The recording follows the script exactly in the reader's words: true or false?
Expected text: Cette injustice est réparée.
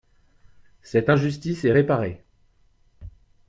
true